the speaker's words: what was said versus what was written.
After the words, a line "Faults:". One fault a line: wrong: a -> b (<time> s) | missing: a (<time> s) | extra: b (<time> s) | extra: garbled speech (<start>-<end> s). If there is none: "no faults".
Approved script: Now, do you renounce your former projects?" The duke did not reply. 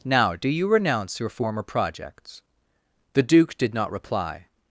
Now, do you renounce your former projects?" The duke did not reply.
Faults:
no faults